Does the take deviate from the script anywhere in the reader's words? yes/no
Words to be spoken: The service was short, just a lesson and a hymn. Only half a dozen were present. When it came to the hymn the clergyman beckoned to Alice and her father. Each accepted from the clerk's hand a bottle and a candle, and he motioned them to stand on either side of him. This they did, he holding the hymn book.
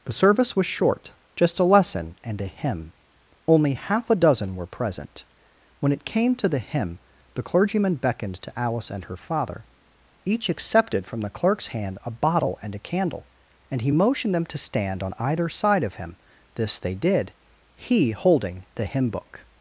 no